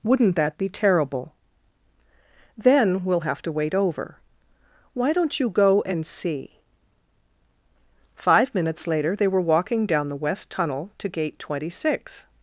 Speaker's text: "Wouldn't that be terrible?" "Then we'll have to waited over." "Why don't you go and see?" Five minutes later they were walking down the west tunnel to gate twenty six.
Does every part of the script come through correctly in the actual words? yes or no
no